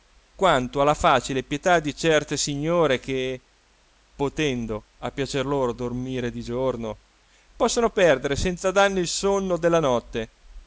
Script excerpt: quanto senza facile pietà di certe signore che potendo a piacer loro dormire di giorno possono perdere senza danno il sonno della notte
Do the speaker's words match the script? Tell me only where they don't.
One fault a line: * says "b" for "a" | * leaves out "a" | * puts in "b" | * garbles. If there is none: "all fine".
* says "alla" for "senza"